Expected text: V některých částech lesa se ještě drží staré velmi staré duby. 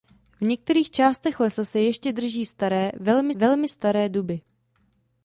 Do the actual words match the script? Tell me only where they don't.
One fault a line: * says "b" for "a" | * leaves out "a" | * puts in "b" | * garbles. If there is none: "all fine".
* puts in "velmi"